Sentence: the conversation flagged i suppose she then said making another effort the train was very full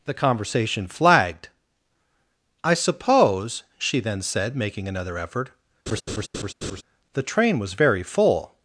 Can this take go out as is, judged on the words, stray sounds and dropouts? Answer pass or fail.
fail